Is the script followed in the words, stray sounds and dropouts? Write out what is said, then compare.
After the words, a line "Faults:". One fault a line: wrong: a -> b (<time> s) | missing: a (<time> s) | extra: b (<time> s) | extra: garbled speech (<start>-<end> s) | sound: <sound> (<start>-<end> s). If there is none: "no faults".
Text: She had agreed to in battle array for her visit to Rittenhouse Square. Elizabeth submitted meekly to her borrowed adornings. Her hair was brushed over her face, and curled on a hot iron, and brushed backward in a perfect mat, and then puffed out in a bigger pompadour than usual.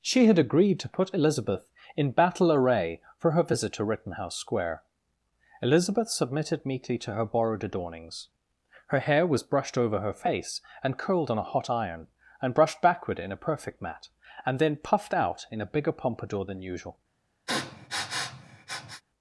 She had agreed to put Elizabeth in battle array for her visit to Rittenhouse Square. Elizabeth submitted meekly to her borrowed adornings. Her hair was brushed over her face, and curled on a hot iron, and brushed backward in a perfect mat, and then puffed out in a bigger pompadour than usual.
Faults:
extra: put Elizabeth (0.9 s)
sound: sniff (17.5-19.0 s)